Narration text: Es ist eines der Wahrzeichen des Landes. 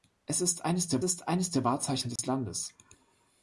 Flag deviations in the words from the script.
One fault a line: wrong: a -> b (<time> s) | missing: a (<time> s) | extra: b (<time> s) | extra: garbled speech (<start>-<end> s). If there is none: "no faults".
extra: ist eines der (1.0 s)